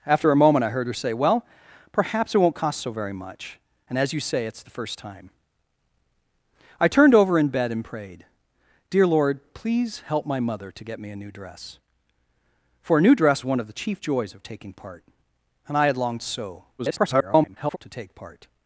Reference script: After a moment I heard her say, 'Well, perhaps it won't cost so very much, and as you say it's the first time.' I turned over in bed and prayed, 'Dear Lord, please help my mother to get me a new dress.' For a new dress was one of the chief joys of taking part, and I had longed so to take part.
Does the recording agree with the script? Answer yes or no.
no